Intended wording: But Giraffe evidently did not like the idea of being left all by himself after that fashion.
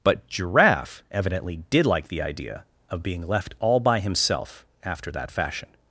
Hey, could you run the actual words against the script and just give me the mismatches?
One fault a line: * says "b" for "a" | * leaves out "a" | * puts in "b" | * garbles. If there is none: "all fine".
* leaves out "not"